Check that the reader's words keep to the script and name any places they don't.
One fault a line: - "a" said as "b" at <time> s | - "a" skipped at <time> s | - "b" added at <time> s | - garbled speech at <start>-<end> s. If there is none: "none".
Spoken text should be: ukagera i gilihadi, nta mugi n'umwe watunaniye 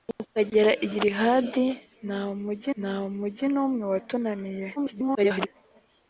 - "nta mugi" added at 2.8 s
- garbled speech at 4.8-5.5 s